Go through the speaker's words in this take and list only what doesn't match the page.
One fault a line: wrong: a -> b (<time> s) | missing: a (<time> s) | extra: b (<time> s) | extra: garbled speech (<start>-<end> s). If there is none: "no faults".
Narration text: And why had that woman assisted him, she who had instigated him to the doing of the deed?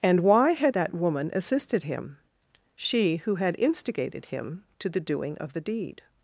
no faults